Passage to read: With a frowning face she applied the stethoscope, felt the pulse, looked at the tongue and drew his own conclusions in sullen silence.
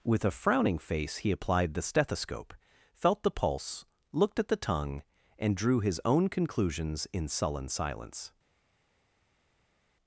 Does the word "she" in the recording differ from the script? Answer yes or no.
yes